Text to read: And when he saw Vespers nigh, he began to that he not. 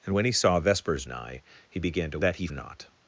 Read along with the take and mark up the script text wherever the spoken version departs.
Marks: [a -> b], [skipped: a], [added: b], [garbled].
And when he saw Vespers nigh, he began to that he not.